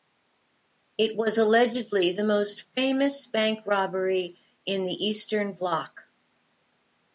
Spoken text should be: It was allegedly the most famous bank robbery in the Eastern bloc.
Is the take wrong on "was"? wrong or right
right